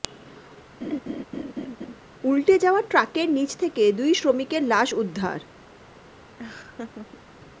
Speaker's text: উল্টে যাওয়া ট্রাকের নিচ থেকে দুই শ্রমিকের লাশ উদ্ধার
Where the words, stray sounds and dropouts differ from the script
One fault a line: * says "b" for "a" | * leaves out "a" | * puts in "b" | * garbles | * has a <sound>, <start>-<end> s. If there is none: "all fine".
* has a laugh, 0.8-2.0 s
* has a laugh, 6.4-7.2 s